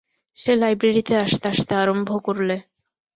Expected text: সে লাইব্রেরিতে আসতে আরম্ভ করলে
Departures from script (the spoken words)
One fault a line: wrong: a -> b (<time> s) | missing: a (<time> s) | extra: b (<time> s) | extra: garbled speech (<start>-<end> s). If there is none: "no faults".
extra: আসতে (1.4 s)